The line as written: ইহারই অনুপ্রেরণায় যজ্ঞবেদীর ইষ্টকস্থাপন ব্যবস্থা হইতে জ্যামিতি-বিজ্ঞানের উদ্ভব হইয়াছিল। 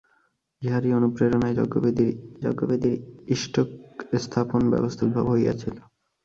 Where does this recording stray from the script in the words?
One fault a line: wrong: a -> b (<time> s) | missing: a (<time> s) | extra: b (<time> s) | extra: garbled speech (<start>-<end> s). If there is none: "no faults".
extra: যজ্ঞবেদীর (2.4 s)
missing: হইতে জ্যামিতি-বিজ্ঞানের (5.0 s)